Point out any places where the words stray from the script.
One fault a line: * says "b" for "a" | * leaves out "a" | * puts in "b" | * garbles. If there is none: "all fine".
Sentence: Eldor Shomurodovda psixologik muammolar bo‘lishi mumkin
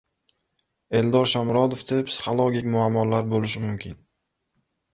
all fine